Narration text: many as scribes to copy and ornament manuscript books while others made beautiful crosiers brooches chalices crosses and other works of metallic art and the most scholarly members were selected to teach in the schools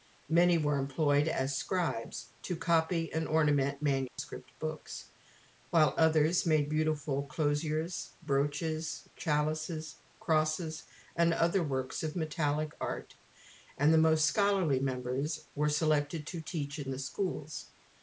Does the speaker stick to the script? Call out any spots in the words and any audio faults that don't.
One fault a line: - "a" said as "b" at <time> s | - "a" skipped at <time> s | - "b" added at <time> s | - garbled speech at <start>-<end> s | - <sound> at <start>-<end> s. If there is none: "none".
- "were employed" added at 0.6 s
- dropout at 4.1-4.2 s